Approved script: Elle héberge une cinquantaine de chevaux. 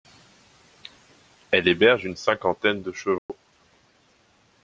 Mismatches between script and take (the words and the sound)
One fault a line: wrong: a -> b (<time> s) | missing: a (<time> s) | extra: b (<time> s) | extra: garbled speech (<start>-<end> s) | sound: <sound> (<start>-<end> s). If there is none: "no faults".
sound: dropout (3.2-3.3 s)